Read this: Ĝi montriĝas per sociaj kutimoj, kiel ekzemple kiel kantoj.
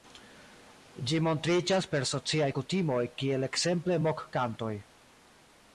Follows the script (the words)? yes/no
no